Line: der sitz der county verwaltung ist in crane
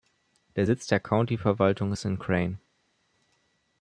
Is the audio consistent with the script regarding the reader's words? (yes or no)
yes